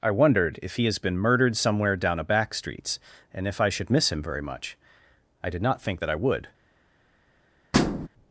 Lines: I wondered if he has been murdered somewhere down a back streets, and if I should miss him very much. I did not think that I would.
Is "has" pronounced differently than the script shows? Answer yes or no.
no